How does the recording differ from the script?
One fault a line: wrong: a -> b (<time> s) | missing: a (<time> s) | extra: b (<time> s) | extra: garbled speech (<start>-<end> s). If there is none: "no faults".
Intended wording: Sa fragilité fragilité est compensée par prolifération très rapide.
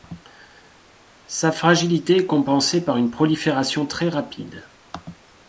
missing: fragilité (2.2 s)
extra: une (3.0 s)